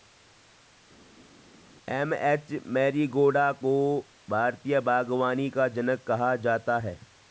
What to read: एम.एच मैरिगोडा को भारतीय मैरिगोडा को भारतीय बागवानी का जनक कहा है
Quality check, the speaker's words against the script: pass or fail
fail